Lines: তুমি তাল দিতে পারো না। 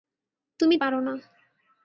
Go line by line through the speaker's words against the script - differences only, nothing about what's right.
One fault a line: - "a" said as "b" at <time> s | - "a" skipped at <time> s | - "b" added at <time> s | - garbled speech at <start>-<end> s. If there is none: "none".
- "তাল দিতে" skipped at 0.8 s